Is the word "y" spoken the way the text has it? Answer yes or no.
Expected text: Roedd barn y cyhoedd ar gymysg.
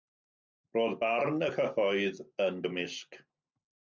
yes